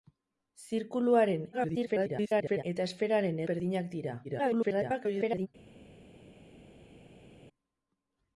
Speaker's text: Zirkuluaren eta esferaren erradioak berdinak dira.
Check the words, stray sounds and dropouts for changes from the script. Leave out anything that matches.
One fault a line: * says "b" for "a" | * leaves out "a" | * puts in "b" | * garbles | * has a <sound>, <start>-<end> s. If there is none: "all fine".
* garbles
* leaves out "erradioak"
* garbles